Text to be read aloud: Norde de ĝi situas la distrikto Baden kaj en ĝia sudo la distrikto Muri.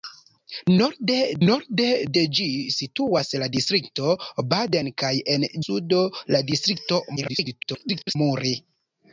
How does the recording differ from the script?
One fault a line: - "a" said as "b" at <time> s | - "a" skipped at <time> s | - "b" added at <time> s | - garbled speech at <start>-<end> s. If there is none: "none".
- "norde" added at 1.5 s
- "ĝia" skipped at 5.5 s
- garbled speech at 7.2-8.2 s